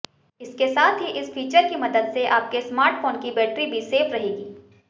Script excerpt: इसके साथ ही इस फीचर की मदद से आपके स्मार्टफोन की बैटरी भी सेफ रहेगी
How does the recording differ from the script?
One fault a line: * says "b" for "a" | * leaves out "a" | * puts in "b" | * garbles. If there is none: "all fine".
all fine